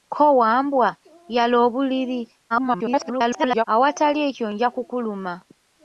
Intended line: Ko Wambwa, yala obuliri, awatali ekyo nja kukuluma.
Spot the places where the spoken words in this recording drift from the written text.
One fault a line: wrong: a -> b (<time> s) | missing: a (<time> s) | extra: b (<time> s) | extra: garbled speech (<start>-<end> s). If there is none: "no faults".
extra: garbled speech (2.5-3.6 s)